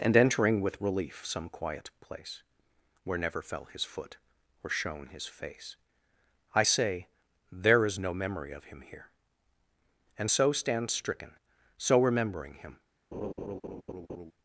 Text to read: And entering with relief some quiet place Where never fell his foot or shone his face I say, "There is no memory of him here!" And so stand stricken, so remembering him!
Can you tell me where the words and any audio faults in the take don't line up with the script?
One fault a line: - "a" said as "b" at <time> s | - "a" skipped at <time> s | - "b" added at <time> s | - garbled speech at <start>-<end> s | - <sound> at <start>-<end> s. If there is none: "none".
- laugh at 13.1-14.3 s